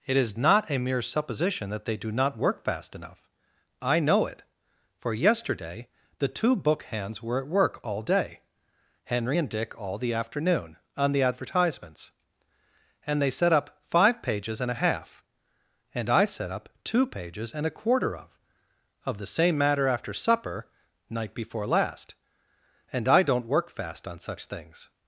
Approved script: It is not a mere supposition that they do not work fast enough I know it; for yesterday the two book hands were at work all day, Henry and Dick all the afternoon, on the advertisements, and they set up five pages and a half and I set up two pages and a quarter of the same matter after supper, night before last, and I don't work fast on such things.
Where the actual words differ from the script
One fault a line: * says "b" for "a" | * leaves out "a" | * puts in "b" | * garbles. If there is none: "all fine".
* puts in "of"